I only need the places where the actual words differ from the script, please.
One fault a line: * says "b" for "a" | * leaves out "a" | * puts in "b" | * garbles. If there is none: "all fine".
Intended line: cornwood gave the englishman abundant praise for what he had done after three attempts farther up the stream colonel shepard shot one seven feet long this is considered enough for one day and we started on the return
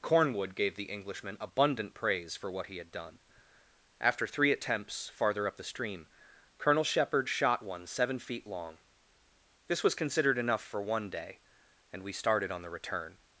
* says "was" for "is"